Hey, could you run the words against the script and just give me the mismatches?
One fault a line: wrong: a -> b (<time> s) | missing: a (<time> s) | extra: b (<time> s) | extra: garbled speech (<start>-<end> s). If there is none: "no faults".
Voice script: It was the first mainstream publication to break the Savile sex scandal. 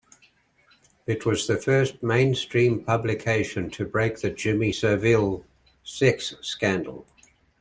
extra: Jimmy (4.3 s)